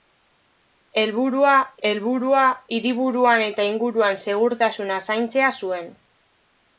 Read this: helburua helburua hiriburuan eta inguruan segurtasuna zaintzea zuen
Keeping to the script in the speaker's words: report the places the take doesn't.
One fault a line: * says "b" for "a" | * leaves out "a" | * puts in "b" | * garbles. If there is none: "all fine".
all fine